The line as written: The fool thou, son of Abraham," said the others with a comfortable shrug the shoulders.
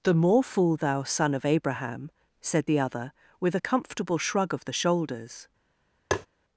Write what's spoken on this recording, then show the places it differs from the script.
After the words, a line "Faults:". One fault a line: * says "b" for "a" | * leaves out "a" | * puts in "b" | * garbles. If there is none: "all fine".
The more fool thou, son of Abraham," said the other with a comfortable shrug of the shoulders.
Faults:
* puts in "more"
* says "other" for "others"
* puts in "of"